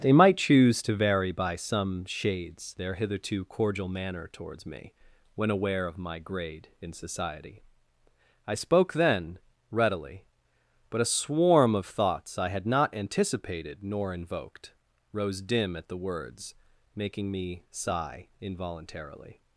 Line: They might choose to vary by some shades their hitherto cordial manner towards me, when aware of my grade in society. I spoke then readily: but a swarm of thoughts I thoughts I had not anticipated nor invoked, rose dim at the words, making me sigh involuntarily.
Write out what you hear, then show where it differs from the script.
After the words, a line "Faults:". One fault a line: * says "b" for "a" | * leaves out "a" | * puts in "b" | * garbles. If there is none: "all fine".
They might choose to vary by some shades their hitherto cordial manner towards me, when aware of my grade in society. I spoke then readily: but a swarm of thoughts I had not anticipated nor invoked, rose dim at the words, making me sigh involuntarily.
Faults:
* leaves out "thoughts I"